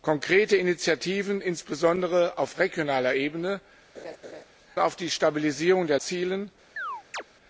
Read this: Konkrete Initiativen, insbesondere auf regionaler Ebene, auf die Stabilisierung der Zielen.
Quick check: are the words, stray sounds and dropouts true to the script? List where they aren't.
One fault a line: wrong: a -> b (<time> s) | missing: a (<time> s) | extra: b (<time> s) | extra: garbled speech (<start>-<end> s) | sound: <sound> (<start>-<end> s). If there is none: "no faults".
sound: laugh (3.9-4.4 s)
sound: chirp (6.8-7.2 s)